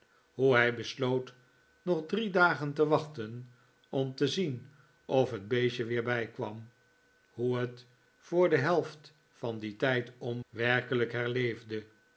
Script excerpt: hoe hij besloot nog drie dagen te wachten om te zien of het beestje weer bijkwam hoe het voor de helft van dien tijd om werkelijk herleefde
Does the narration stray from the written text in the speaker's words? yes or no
no